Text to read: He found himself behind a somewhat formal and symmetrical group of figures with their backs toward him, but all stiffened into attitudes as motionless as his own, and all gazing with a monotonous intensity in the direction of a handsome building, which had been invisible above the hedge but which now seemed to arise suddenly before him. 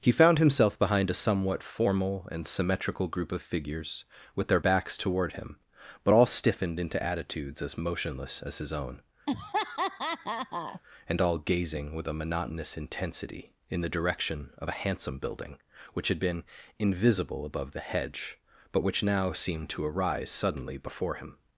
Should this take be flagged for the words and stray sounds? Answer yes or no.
yes